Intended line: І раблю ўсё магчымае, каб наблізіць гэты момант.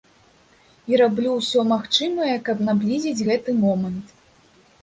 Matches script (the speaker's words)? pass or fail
pass